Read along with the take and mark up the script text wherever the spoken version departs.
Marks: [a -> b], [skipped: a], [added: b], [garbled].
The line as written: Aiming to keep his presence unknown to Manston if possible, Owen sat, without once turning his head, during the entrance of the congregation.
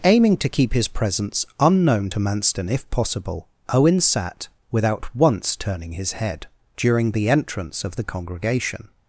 Aiming to keep his presence unknown to Manston if possible, Owen sat, without once turning his head, during the entrance of the congregation.